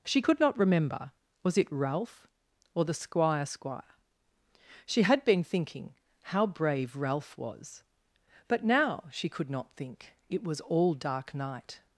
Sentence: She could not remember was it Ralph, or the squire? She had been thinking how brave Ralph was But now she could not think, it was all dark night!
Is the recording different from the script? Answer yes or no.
yes